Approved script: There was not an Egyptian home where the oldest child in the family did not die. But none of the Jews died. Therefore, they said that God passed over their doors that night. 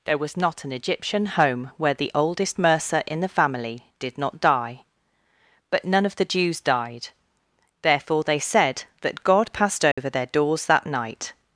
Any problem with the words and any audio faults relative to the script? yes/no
yes